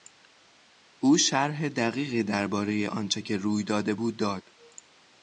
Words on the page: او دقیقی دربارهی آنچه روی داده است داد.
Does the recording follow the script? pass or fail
fail